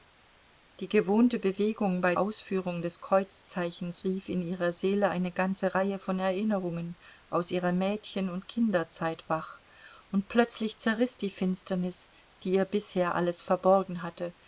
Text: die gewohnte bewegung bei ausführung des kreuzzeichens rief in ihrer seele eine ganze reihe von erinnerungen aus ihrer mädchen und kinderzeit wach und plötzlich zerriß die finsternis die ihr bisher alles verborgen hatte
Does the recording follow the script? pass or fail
pass